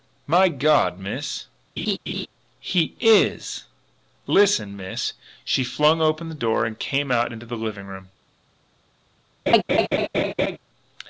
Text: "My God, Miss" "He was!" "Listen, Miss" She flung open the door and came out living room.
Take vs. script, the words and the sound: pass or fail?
fail